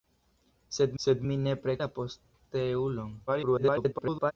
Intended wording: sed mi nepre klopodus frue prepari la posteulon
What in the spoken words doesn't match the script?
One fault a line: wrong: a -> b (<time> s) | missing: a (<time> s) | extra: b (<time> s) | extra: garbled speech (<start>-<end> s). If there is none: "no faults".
extra: sed (1.0 s)
missing: klopodus frue prepari (1.7 s)
extra: garbled speech (3.3-4.3 s)